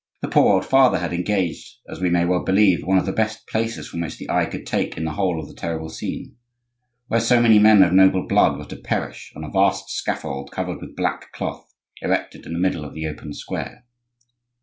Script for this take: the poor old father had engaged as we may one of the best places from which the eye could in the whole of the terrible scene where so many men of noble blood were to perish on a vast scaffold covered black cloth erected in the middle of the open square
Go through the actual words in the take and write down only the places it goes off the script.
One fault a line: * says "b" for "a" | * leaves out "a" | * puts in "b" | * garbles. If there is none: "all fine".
* puts in "well believe"
* puts in "take"
* puts in "with"